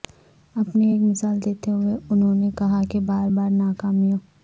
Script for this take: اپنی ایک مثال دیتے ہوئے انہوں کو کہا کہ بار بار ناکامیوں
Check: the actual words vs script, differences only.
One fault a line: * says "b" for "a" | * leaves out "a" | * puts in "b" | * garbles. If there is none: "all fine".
* says "نے" for "کو"